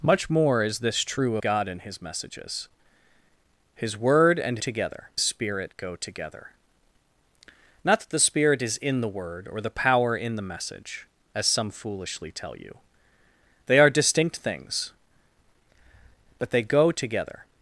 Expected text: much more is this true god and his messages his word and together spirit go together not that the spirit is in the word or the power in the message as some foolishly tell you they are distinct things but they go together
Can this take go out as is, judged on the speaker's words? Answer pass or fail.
pass